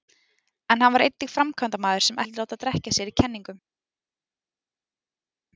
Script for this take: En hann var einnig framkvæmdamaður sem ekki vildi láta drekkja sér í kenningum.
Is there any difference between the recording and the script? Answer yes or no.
yes